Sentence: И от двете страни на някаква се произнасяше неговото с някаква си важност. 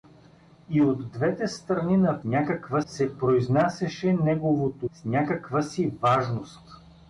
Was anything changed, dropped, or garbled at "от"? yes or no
no